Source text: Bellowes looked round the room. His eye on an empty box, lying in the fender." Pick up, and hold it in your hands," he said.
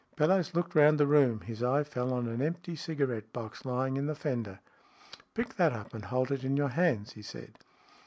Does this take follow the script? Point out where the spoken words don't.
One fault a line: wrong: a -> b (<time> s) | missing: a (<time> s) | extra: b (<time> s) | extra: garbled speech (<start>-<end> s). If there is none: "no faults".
extra: fell (1.8 s)
extra: cigarette (2.8 s)
extra: that (5.6 s)